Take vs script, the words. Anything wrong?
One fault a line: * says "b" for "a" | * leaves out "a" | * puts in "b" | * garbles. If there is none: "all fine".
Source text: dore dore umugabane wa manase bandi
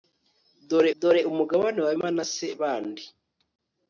all fine